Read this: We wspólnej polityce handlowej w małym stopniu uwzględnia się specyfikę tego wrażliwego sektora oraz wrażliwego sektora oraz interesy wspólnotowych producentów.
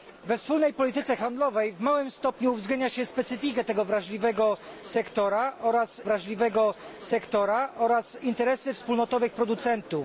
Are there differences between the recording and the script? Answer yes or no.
no